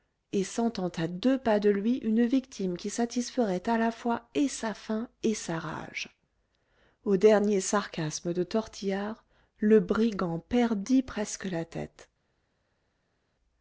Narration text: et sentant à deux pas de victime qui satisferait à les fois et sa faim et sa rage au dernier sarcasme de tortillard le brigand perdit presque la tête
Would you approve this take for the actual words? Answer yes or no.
no